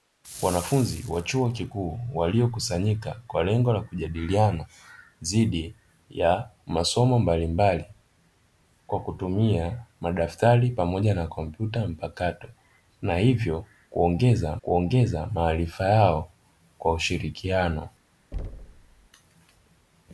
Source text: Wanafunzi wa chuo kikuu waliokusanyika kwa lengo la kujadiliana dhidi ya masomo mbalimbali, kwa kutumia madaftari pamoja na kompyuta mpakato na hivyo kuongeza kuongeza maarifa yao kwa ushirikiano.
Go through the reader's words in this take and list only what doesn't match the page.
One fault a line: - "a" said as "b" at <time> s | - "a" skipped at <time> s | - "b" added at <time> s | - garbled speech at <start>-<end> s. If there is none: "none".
none